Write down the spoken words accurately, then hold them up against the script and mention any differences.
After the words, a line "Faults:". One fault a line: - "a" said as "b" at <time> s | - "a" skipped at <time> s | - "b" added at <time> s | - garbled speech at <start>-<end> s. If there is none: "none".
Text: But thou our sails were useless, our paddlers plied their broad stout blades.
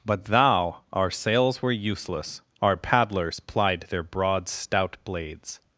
But thou our sails were useless, our paddlers plied their broad stout blades.
Faults:
none